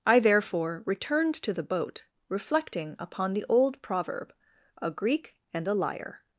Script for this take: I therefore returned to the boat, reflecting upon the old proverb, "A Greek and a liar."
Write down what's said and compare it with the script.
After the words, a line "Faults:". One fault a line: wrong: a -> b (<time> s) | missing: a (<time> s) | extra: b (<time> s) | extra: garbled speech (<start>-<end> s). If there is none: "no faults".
I therefore returned to the boat, reflecting upon the old proverb, "A Greek and a liar."
Faults:
no faults